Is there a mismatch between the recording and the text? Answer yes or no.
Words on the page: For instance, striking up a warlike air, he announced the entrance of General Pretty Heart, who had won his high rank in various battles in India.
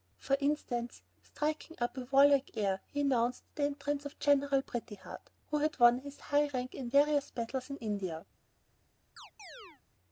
no